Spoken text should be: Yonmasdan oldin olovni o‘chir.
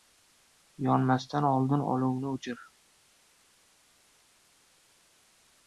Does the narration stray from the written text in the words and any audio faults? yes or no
no